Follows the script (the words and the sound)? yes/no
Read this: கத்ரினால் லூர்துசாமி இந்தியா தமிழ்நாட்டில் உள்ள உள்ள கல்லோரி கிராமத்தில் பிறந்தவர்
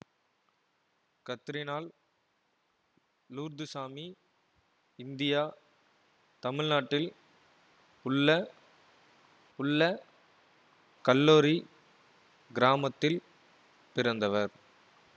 yes